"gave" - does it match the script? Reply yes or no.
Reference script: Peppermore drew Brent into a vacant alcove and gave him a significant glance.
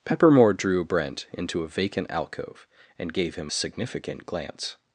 yes